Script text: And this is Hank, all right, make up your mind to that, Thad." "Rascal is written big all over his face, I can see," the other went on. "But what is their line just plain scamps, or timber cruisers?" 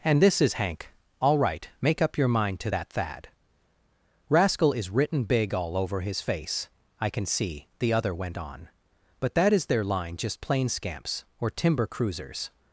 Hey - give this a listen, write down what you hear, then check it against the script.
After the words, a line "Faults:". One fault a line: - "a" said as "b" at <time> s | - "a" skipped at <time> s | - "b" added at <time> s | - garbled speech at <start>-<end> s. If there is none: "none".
And this is Hank, all right, make up your mind to that, Thad." "Rascal is written big all over his face, I can see," the other went on. "But that is their line just plain scamps, or timber cruisers?"
Faults:
- "what" said as "that" at 9.3 s